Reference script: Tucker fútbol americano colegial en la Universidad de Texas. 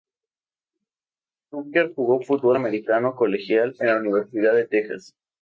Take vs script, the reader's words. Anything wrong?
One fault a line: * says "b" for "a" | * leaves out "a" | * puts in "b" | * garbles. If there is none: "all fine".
* puts in "jugó"